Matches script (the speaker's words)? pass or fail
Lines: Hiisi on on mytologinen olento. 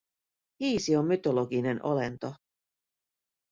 fail